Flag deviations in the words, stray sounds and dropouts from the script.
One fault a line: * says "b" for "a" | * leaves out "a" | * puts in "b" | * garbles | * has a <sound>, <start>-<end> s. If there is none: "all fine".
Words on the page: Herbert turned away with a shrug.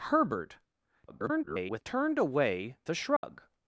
* garbles
* leaves out "with"
* has a dropout, 3.2-3.2 s